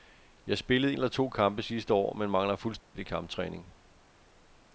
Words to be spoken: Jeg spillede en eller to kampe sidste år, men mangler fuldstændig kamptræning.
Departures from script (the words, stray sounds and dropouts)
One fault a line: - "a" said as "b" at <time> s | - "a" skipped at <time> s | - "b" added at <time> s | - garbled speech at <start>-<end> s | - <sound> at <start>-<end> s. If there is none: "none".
- "en" skipped at 0.9 s
- dropout at 2.8-2.9 s